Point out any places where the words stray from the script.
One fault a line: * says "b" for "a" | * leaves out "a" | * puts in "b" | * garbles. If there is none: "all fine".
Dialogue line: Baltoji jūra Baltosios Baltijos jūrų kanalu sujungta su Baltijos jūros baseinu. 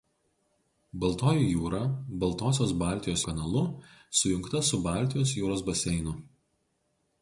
* leaves out "jūrų"